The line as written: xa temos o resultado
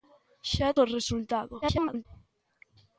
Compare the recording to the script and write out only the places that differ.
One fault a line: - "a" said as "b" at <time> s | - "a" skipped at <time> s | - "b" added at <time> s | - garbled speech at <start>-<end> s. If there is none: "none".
- "temos" skipped at 0.7 s
- garbled speech at 1.6-2.1 s